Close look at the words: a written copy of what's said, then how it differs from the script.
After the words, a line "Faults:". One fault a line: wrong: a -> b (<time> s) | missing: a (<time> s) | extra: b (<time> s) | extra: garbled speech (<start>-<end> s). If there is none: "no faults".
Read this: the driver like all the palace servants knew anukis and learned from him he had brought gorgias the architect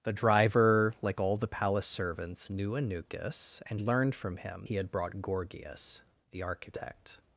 the driver like all the palace servants knew anukis and learned from him he had brought gorgias the architect
Faults:
no faults